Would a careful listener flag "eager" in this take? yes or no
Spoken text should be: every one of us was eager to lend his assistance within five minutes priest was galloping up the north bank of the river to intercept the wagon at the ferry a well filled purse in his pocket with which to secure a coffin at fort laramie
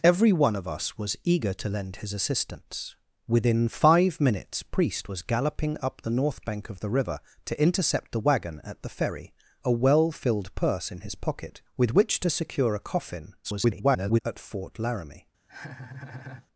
no